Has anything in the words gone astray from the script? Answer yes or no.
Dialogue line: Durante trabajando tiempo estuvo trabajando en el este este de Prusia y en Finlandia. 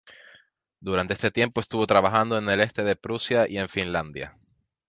yes